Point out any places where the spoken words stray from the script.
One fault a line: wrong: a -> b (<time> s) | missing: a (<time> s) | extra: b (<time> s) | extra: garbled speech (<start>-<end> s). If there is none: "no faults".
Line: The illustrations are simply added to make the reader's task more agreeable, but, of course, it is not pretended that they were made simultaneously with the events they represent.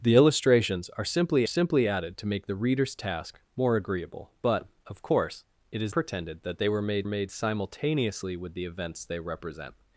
extra: simply (1.5 s)
missing: not (5.9 s)
extra: made (7.1 s)